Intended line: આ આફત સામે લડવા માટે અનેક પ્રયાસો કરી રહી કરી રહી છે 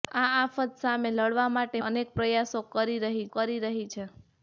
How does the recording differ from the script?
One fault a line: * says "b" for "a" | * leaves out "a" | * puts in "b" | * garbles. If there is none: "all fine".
all fine